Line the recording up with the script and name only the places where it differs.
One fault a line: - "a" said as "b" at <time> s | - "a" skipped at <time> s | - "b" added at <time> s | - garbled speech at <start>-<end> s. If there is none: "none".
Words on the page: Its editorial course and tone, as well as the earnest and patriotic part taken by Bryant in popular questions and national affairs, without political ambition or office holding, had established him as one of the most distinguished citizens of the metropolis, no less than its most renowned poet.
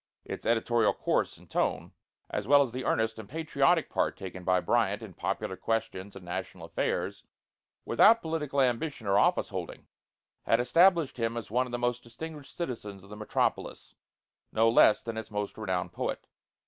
none